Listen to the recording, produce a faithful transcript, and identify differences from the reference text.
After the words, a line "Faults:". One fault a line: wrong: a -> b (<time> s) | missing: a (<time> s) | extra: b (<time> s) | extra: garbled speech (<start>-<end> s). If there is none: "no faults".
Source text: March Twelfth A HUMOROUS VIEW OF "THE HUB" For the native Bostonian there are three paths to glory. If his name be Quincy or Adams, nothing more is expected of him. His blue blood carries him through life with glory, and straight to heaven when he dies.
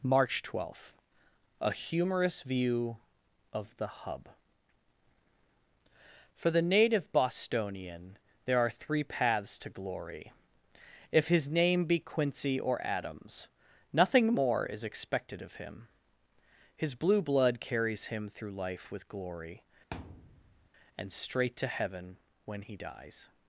March Twelfth A HUMOROUS VIEW OF "THE HUB" For the native Bostonian there are three paths to glory. If his name be Quincy or Adams, nothing more is expected of him. His blue blood carries him through life with glory, and straight to heaven when he dies.
Faults:
no faults